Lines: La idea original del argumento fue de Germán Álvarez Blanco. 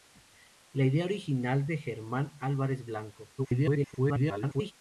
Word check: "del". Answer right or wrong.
wrong